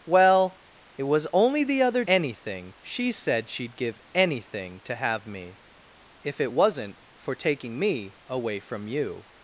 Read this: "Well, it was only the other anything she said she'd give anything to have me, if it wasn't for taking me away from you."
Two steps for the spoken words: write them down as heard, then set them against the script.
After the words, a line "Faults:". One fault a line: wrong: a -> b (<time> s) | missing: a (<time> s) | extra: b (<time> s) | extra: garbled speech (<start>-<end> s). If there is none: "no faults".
"Well, it was only the other anything she said she'd give anything to have me, if it wasn't for taking me away from you."
Faults:
no faults